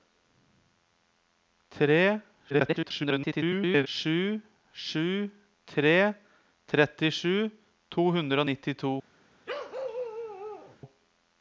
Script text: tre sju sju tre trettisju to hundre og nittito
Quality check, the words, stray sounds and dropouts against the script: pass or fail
fail